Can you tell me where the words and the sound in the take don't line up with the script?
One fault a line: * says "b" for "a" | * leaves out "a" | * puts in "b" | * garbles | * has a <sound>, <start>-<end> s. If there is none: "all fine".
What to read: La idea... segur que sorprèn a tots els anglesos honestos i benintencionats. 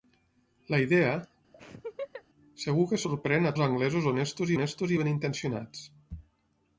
* has a laugh, 1.5-2.2 s
* leaves out "tots"
* puts in "honestos"